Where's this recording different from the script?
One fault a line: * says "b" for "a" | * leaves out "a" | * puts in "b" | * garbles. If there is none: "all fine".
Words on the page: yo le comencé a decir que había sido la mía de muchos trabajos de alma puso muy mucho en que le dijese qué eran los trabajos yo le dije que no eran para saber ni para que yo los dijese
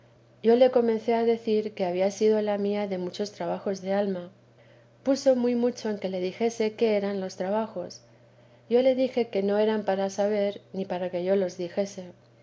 all fine